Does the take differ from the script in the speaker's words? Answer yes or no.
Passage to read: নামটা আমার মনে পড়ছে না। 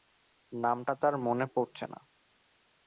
yes